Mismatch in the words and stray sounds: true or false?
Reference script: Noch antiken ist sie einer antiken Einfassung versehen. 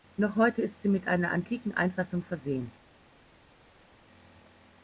true